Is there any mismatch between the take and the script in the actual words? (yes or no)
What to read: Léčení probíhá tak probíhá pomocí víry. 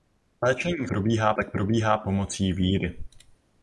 no